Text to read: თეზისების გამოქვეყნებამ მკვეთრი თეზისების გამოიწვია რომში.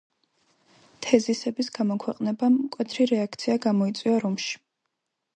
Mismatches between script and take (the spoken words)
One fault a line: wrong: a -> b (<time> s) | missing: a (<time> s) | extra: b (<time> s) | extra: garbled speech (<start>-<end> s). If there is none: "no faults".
wrong: თეზისების -> რეაქცია (3.1 s)